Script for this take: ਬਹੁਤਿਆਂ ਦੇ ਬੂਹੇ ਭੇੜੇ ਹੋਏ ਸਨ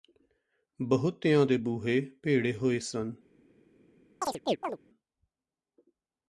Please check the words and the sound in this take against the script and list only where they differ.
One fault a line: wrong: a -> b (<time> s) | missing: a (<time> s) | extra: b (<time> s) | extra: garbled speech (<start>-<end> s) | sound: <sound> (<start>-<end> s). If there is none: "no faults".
sound: chirp (4.2-4.8 s)